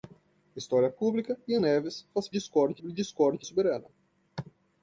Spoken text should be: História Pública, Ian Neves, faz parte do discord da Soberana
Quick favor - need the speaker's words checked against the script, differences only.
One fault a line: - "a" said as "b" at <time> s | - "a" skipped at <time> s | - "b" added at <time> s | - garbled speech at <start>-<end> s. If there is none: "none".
- "parte" said as "discord" at 2.3 s
- "da" skipped at 3.5 s